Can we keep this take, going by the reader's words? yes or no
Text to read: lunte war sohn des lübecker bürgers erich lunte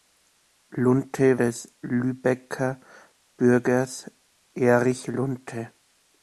no